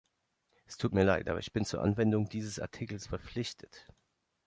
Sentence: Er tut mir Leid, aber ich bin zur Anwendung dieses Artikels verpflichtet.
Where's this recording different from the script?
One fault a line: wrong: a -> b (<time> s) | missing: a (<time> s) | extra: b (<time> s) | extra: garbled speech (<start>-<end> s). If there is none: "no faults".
wrong: Er -> Es (0.7 s)